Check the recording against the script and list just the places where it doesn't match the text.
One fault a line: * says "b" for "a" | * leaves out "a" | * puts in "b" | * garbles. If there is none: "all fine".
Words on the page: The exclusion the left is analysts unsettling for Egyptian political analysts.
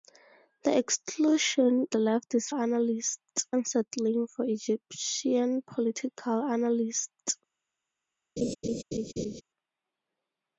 all fine